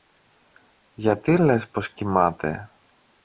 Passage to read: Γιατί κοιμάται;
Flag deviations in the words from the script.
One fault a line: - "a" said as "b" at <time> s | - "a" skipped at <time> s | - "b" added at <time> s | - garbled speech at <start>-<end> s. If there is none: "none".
- "λες πως" added at 1.4 s